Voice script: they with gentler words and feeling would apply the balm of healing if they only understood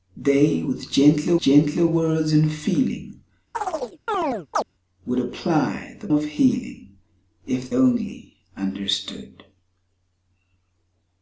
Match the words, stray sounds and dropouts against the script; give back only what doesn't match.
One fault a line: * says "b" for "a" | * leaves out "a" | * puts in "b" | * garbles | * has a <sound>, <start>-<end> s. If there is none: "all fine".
* puts in "gentler"
* has a chirp, 3.5-4.6 s
* leaves out "balm"
* leaves out "they"